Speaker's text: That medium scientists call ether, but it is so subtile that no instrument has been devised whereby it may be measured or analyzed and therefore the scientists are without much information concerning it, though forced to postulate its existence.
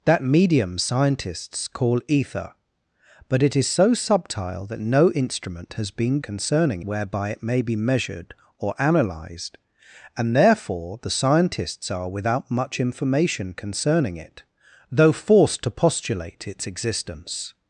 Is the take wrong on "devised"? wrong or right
wrong